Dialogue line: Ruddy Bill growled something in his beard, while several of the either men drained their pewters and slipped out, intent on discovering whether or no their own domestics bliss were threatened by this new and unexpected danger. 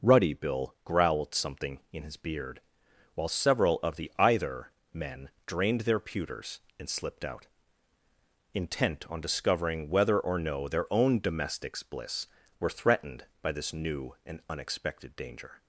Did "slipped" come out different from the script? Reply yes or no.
no